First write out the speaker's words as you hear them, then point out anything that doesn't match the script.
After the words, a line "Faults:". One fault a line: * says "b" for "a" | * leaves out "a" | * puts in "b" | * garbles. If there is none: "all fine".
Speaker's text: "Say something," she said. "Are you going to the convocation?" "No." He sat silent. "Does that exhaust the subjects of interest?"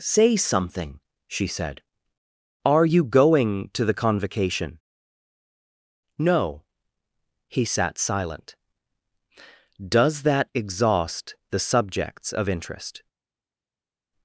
"Say something," she said. "Are you going to the convocation?" "No." He sat silent. "Does that exhaust the subjects of interest?"
Faults:
all fine